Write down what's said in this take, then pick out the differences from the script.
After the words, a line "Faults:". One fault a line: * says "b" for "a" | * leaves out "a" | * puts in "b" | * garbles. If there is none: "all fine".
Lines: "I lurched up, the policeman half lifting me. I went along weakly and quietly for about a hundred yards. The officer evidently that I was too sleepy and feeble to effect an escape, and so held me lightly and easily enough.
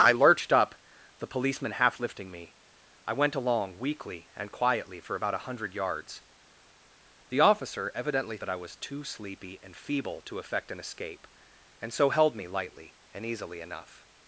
"I lurched up, the policeman half lifting me. I went along weakly and quietly for about a hundred yards. The officer evidently that I was too sleepy and feeble to effect an escape, and so held me lightly and easily enough.
Faults:
all fine